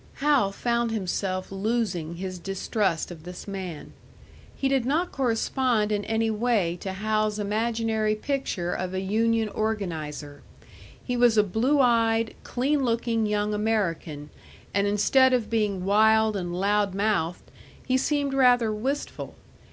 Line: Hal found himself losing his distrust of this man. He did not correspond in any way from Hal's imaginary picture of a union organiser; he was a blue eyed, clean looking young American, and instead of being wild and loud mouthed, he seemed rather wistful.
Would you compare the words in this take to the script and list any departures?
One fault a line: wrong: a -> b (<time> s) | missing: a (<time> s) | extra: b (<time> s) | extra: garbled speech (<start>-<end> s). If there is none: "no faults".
wrong: from -> to (6.8 s)